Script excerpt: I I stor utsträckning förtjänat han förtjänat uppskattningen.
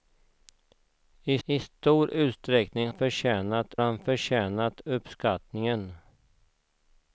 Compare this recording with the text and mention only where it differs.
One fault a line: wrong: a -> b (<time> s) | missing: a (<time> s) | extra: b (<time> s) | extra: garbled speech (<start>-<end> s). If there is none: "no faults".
no faults